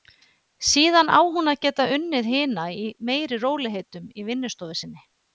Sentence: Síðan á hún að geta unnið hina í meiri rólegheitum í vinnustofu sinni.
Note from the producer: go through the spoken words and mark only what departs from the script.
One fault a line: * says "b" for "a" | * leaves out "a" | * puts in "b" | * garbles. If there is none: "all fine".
all fine